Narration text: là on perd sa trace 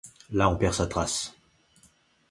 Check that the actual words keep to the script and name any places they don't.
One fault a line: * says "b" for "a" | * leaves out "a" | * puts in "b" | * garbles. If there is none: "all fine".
all fine